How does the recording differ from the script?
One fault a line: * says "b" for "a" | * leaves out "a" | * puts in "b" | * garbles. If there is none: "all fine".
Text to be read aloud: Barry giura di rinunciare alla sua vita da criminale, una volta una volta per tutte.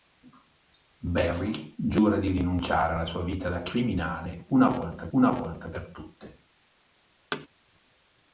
all fine